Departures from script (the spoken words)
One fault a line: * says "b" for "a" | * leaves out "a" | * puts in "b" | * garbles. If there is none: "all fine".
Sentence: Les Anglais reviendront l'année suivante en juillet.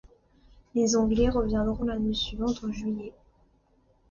all fine